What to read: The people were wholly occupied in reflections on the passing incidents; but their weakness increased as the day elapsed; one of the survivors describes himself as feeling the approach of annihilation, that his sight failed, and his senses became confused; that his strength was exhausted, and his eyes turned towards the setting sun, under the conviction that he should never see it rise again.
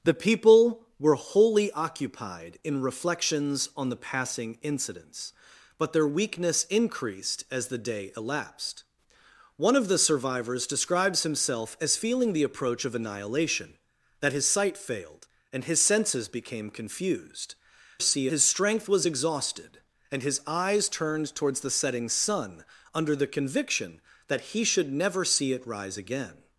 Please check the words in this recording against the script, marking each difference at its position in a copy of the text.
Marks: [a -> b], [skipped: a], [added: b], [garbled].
The people were wholly occupied in reflections on the passing incidents; but their weakness increased as the day elapsed; one of the survivors describes himself as feeling the approach of annihilation, that his sight failed, and his senses became confused; [that -> see] his strength was exhausted, and his eyes turned towards the setting sun, under the conviction that he should never see it rise again.